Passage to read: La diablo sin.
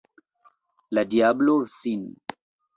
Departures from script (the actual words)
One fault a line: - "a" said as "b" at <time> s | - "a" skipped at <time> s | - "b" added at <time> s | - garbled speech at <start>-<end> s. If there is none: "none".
none